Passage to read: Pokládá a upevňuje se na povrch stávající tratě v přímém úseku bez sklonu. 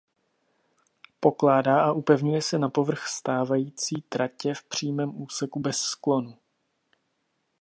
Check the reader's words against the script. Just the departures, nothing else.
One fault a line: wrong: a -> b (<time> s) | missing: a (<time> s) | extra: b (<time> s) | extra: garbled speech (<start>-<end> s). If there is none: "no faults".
no faults